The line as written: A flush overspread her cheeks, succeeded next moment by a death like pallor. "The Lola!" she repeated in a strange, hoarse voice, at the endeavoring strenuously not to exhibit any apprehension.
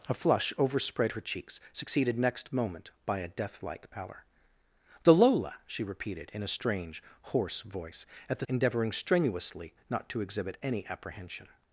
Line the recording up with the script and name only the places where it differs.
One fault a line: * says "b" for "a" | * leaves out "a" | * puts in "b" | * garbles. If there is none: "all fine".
all fine